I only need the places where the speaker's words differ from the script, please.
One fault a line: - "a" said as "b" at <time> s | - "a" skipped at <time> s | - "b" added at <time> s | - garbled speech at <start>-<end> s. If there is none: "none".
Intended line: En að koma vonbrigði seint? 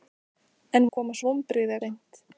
none